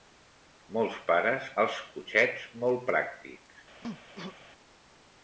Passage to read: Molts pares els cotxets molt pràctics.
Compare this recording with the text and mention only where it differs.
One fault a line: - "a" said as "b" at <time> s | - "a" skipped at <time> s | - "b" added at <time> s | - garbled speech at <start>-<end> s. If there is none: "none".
none